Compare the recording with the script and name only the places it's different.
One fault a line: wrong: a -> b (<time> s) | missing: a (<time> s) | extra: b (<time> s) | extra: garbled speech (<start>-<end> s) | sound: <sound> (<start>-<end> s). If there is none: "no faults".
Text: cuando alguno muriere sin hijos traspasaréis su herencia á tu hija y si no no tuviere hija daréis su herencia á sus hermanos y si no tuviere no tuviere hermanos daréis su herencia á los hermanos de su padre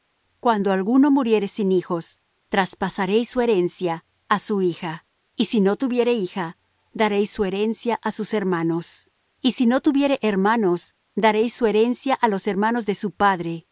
wrong: tu -> su (4.4 s)
missing: no (5.8 s)
missing: no tuviere (10.2 s)